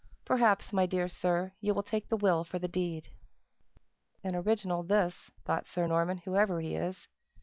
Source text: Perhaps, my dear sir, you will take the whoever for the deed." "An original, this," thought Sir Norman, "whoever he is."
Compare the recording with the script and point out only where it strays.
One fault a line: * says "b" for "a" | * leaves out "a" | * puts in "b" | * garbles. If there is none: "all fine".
* says "will" for "whoever"